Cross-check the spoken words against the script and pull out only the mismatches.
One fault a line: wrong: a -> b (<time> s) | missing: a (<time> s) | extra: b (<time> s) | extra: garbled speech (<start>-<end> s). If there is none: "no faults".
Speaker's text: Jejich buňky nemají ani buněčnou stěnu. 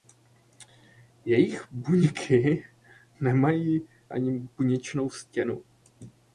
no faults